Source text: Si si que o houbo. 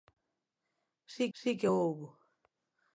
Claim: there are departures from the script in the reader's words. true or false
false